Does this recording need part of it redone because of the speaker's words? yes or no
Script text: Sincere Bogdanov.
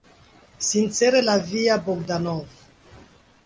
yes